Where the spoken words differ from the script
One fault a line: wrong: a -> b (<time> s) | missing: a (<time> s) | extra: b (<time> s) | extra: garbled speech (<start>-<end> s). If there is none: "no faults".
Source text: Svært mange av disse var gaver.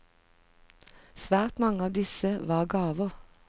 no faults